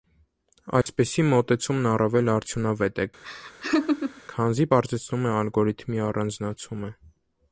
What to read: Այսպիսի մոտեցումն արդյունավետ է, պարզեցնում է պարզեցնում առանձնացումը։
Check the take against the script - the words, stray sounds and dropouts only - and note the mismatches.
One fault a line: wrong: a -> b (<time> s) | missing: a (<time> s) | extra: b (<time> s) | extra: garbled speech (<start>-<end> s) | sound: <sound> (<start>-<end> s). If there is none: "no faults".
sound: dropout (0.8-0.9 s)
extra: առավել (1.9 s)
sound: laugh (3.2-4.2 s)
extra: քանզի (4.4 s)
wrong: պարզեցնում -> ալգորիթմի (5.4 s)